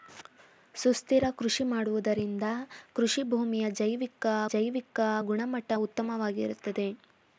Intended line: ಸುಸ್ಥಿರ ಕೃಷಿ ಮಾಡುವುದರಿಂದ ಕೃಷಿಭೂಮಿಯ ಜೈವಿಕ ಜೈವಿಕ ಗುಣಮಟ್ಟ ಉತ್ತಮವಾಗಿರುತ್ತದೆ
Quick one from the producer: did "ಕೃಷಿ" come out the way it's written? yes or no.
yes